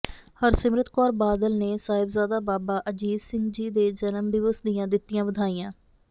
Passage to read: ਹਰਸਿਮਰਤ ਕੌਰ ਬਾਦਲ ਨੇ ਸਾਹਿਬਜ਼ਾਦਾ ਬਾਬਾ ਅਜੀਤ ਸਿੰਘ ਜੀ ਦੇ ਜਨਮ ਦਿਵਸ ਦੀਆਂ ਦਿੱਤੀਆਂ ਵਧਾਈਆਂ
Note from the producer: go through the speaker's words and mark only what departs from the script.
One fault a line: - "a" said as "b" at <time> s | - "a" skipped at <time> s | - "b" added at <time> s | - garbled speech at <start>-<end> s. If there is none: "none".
none